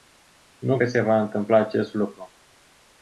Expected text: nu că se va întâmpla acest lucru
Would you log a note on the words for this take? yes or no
no